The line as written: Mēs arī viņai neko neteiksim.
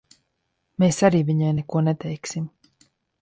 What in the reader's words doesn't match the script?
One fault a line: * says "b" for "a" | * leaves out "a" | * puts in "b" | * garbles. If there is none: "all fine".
all fine